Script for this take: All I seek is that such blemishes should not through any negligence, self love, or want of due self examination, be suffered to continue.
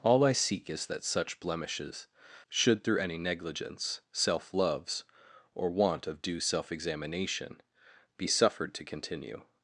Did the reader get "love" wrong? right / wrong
wrong